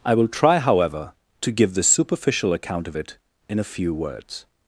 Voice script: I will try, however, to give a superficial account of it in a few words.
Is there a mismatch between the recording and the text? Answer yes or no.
yes